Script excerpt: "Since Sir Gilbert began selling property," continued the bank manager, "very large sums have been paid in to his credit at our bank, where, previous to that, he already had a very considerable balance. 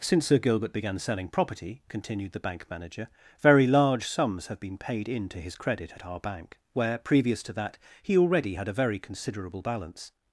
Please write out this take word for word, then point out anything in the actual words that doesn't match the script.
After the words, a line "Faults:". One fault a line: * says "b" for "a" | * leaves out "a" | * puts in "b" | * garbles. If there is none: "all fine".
"Since Sir Gilbert began selling property," continued the bank manager, "very large sums have been paid in to his credit at our bank, where, previous to that, he already had a very considerable balance.
Faults:
all fine